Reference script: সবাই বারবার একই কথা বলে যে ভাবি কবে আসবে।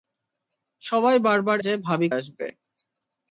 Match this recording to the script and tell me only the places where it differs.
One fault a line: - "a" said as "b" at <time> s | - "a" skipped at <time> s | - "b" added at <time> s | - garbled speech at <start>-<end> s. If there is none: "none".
- "একই কথা বলে" skipped at 1.6 s
- "কবে" skipped at 2.1 s